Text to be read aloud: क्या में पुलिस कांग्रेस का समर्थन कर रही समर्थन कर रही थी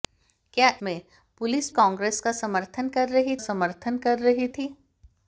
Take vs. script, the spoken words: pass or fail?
pass